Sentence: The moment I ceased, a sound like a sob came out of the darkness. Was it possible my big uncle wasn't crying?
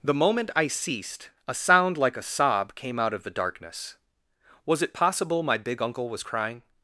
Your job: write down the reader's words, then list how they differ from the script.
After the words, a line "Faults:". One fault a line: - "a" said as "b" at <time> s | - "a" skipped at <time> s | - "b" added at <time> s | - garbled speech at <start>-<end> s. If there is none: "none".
The moment I ceased, a sound like a sob came out of the darkness. Was it possible my big uncle was crying?
Faults:
- "wasn't" said as "was" at 6.1 s